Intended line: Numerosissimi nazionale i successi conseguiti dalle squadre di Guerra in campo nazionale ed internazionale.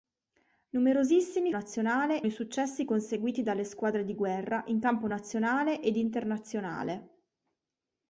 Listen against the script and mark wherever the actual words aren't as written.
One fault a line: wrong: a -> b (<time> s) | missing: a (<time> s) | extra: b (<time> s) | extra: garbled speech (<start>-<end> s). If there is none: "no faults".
no faults